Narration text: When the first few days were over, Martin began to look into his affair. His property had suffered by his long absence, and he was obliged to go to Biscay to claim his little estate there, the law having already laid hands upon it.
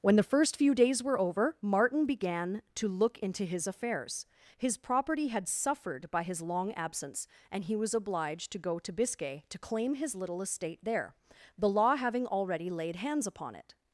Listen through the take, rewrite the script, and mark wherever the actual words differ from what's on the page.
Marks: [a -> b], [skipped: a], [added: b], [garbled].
When the first few days were over, Martin began to look into his [affair. -> affairs] His property had suffered by his long absence, and he was obliged to go to Biscay to claim his little estate there, the law having already laid hands upon it.